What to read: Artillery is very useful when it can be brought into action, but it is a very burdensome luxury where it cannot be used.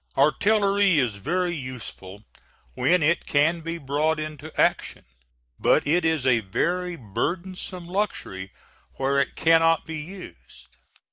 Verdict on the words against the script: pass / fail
pass